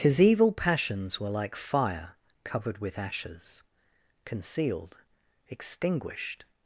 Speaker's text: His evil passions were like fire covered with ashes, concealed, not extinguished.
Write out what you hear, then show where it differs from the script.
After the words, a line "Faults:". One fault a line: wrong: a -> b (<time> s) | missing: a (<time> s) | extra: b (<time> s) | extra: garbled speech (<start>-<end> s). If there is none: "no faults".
His evil passions were like fire covered with ashes, concealed, extinguished.
Faults:
missing: not (5.0 s)